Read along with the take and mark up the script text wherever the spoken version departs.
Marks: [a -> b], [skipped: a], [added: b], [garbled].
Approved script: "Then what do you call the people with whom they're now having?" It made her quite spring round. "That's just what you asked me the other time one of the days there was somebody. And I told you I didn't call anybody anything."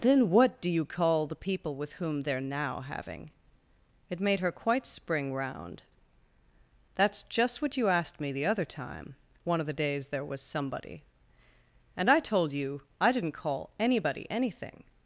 "Then what do you call the people with whom they're now having?" It made her quite spring round. "That's just what you asked me the other time one of the days there was somebody. And I told you I didn't call anybody anything."